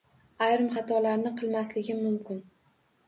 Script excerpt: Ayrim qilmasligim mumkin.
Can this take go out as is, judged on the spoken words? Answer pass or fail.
fail